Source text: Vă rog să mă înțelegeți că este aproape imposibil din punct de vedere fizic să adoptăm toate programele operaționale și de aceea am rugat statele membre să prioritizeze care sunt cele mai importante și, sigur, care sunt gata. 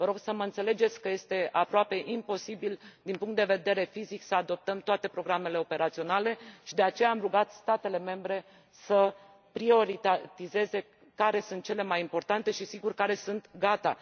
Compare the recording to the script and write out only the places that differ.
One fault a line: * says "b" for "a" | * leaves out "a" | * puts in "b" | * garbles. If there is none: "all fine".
all fine